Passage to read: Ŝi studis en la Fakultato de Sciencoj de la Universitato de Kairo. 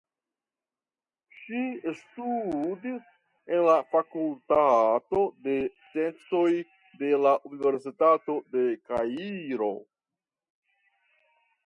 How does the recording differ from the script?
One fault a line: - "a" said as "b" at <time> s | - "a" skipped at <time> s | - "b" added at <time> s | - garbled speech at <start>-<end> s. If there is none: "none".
none